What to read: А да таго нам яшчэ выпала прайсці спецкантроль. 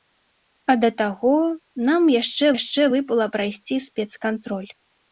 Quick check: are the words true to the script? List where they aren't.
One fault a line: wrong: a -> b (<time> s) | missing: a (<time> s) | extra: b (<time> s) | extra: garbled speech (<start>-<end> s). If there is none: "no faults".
extra: яшчэ (2.6 s)